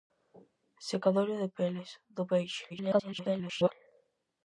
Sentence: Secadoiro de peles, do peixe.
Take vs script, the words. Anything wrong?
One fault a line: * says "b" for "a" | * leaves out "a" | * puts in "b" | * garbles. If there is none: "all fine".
* garbles